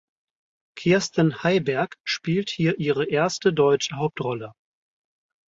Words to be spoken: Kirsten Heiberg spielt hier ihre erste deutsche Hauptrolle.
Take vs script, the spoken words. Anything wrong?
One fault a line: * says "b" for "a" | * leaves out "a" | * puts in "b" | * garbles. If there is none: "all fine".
all fine